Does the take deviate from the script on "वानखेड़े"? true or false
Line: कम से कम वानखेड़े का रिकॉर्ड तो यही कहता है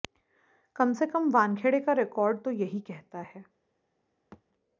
false